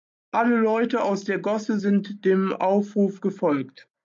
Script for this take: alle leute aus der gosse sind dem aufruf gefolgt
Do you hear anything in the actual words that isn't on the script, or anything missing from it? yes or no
no